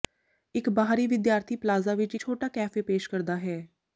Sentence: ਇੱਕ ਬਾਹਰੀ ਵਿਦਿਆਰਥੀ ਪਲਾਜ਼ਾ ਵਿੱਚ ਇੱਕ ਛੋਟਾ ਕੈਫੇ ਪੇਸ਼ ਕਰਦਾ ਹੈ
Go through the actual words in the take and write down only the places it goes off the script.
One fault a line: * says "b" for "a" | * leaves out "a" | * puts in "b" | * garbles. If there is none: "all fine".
* leaves out "ਇੱਕ"